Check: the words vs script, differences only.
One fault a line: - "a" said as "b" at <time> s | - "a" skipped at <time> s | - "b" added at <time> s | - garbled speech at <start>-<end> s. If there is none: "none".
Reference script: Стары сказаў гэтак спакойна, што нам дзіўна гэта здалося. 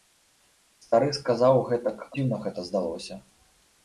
- "спакойна што нам" skipped at 2.0 s